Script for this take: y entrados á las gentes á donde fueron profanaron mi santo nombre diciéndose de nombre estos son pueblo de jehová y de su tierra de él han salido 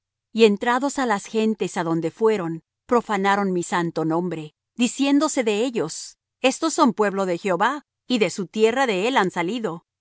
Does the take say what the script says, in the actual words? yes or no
no